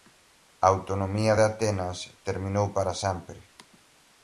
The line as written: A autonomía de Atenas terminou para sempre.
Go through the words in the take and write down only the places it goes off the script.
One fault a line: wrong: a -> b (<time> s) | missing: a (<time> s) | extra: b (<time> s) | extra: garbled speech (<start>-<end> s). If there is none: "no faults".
no faults